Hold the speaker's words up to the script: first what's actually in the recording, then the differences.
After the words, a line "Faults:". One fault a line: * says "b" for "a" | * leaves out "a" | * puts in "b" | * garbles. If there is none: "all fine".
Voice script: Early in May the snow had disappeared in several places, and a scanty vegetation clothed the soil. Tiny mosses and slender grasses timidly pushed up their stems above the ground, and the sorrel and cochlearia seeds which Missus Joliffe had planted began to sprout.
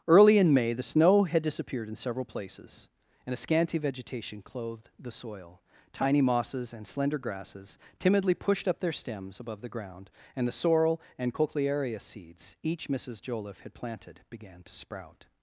Early in May the snow had disappeared in several places, and a scanty vegetation clothed the soil. Tiny mosses and slender grasses timidly pushed up their stems above the ground, and the sorrel and cochlearia seeds each Missus Joliffe had planted began to sprout.
Faults:
* says "each" for "which"